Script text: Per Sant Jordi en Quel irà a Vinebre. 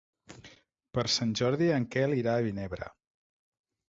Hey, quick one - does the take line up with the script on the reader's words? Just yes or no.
yes